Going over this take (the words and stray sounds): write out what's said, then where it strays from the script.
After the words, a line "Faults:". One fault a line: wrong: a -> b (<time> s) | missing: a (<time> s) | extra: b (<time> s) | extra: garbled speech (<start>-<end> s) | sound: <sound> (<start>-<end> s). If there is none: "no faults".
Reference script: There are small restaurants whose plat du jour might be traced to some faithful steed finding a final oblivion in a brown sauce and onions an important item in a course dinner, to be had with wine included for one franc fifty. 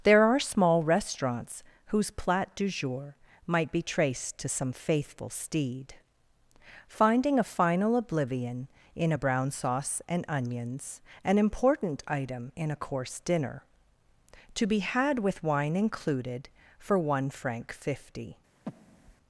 There are small restaurants whose plat du jour might be traced to some faithful steed finding a final oblivion in a brown sauce and onions an important item in a course dinner, to be had with wine included for one franc fifty.
Faults:
sound: breath (18.7-19.2 s)